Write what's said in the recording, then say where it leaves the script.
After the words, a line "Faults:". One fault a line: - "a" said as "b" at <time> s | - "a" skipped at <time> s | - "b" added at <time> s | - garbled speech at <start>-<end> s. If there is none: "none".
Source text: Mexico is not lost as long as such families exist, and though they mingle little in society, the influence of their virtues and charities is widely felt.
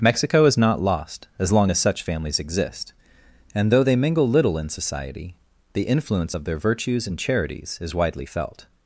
Mexico is not lost as long as such families exist, and though they mingle little in society, the influence of their virtues and charities is widely felt.
Faults:
none